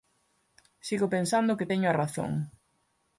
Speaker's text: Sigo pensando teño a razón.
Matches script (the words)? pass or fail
fail